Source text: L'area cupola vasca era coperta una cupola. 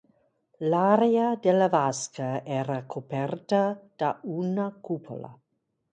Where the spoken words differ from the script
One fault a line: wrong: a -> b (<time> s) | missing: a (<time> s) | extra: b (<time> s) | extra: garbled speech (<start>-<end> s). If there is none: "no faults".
wrong: cupola -> della (1.4 s)
extra: da (4.0 s)